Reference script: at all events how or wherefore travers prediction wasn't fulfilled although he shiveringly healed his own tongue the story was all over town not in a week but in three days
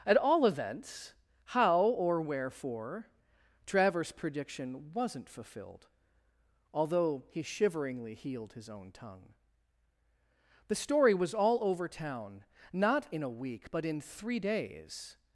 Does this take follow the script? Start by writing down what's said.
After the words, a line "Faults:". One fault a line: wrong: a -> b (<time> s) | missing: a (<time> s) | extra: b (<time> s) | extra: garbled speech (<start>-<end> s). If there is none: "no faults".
at all events how or wherefore travers prediction wasn't fulfilled although he shiveringly healed his own tongue the story was all over town not in a week but in three days
Faults:
no faults